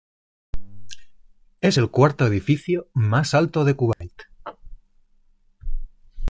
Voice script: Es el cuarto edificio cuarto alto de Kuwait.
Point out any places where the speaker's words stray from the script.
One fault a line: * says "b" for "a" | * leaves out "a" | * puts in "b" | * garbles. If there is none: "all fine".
* says "más" for "cuarto"